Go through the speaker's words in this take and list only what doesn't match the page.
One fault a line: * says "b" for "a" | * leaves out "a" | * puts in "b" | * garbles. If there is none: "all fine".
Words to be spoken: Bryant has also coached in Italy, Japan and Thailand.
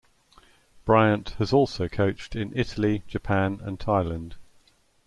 all fine